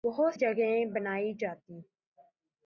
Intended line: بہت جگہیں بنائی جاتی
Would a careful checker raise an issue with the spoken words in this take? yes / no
no